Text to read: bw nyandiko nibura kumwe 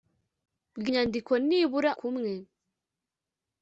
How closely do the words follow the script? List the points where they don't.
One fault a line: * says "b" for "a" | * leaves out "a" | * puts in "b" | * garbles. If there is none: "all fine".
all fine